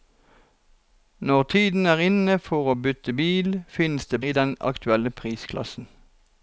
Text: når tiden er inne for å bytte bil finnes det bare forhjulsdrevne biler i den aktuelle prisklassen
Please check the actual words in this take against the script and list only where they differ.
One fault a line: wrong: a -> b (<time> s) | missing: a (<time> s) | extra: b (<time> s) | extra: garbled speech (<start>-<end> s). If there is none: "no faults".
missing: bare forhjulsdrevne biler (4.2 s)